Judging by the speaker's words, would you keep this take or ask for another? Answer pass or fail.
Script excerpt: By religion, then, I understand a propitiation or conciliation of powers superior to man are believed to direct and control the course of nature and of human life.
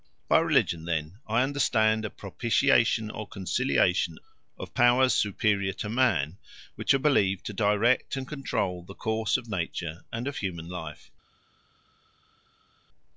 fail